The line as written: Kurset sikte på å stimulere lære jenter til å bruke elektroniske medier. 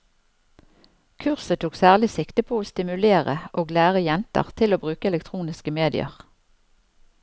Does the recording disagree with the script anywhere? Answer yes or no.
yes